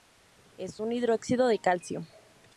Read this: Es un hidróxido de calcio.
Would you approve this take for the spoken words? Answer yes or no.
yes